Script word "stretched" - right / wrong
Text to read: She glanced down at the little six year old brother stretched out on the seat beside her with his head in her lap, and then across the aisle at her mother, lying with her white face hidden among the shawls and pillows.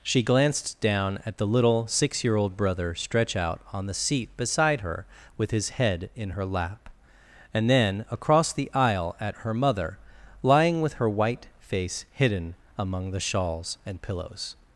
wrong